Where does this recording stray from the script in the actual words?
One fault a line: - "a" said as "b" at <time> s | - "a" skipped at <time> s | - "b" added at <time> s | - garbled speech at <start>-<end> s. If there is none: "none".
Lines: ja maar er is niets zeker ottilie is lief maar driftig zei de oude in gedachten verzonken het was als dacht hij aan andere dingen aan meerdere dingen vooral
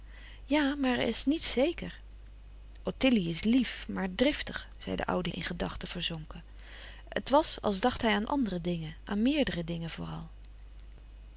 none